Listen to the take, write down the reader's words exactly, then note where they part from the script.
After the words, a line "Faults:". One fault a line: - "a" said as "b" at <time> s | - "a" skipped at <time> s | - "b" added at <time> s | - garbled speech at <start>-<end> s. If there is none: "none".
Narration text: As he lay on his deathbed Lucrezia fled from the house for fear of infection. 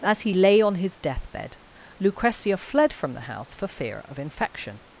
As he lay on his deathbed Lucrezia fled from the house for fear of infection.
Faults:
none